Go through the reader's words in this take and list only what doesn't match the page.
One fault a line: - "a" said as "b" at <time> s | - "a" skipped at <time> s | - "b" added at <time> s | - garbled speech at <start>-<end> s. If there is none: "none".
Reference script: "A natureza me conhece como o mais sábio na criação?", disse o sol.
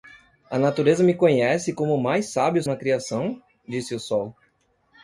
none